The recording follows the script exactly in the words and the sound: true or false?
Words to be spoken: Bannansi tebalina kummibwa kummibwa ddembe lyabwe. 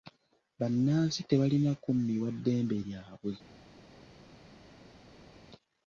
false